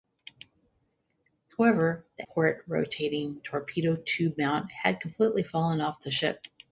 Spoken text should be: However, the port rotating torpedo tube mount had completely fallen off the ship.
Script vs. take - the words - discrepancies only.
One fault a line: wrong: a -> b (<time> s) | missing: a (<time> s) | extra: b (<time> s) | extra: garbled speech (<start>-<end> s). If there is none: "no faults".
no faults